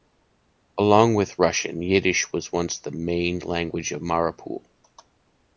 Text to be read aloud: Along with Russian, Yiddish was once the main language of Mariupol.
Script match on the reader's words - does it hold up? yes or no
yes